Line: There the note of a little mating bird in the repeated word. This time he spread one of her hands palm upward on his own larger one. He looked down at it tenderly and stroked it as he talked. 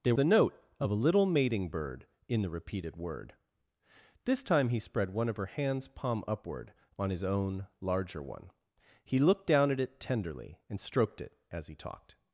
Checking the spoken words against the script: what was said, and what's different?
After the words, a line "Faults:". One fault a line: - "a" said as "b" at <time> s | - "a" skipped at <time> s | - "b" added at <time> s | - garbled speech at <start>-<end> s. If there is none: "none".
There the note of a little mating bird in the repeated word. This time he spread one of her hands palm upward on his own larger one. He looked down at it tenderly and stroked it as he talked.
Faults:
none